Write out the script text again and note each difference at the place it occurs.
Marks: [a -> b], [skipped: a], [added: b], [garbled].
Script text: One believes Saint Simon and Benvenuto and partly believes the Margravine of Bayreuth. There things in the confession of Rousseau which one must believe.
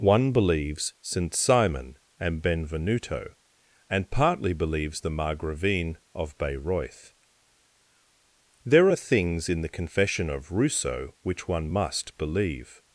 One believes Saint Simon and Benvenuto and partly believes the Margravine of Bayreuth. There [added: are] things in the confession of Rousseau which one must believe.